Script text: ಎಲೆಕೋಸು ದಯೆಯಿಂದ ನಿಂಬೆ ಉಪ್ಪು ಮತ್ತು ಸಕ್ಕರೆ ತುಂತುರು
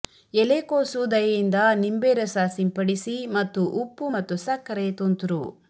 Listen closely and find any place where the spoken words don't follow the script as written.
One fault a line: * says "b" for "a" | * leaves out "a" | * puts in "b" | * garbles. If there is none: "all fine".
* puts in "ರಸ ಸಿಂಪಡಿಸಿ ಮತ್ತು"